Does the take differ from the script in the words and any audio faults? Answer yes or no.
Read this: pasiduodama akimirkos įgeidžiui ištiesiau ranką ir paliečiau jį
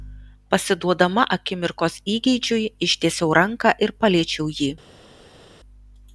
no